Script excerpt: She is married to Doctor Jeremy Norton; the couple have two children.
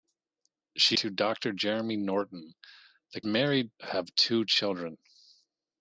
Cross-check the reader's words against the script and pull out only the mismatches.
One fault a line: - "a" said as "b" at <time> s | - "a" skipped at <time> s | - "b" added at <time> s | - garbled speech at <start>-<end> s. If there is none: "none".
- "is married" skipped at 1.0 s
- "couple" said as "married" at 3.2 s